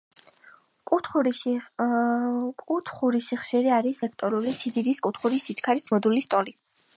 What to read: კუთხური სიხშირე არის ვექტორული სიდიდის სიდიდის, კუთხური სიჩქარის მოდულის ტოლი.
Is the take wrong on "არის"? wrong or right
right